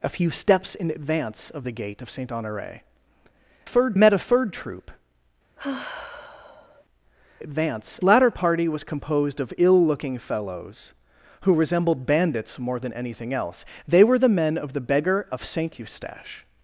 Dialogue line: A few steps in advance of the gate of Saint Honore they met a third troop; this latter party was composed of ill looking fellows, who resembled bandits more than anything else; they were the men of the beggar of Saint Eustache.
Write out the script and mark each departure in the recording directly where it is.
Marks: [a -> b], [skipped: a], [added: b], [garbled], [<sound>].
A few steps in advance of the gate of Saint Honore [they -> third] met a third troop; [sigh] [this -> advance] latter party was composed of ill looking fellows, who resembled bandits more than anything else; they were the men of the beggar of Saint Eustache.